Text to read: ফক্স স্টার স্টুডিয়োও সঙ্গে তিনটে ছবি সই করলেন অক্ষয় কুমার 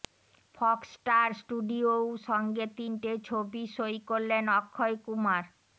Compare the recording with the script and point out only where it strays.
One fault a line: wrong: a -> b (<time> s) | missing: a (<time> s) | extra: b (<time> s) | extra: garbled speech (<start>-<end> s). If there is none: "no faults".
no faults